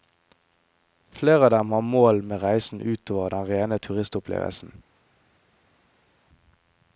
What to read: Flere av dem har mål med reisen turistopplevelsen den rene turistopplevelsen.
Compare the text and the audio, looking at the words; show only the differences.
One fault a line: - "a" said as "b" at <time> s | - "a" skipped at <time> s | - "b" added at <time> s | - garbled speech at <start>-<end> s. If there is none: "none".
- "turistopplevelsen" said as "utover" at 2.8 s